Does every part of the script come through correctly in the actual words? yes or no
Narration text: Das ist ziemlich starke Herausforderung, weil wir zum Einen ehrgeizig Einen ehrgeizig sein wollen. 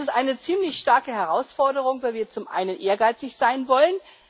no